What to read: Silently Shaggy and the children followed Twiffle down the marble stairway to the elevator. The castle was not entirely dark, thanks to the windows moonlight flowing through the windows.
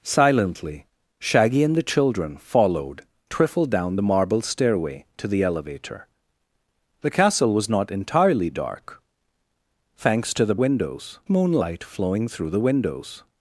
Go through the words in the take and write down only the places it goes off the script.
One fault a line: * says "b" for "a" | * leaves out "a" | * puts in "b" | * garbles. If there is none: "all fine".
all fine